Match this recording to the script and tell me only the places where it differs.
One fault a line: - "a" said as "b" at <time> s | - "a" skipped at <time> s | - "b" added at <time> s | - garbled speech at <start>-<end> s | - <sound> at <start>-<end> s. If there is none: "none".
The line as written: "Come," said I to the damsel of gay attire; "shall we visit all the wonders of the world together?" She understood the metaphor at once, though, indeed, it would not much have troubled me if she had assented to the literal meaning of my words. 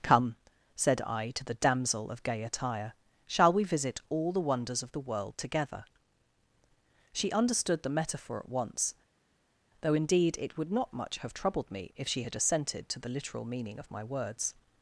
none